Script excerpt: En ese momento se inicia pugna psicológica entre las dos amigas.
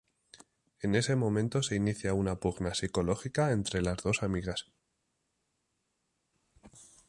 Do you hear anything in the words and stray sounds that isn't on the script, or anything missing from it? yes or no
yes